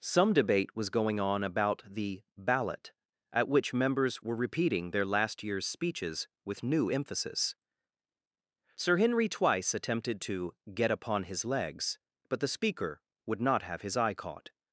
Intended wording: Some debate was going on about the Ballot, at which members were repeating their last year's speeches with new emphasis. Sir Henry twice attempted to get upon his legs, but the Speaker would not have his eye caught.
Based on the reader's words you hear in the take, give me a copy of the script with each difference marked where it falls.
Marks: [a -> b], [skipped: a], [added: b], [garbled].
Some debate was going on about the Ballot, at which members were repeating their last year's speeches with new emphasis. Sir Henry twice attempted to get upon his legs, but the Speaker would not have his eye caught.